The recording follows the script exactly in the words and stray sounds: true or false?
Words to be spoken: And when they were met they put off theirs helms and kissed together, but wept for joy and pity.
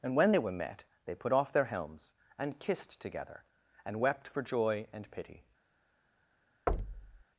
false